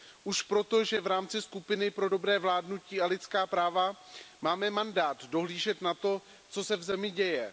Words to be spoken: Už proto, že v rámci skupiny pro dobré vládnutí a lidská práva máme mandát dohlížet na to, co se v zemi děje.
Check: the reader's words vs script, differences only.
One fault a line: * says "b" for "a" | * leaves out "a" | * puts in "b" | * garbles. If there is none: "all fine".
all fine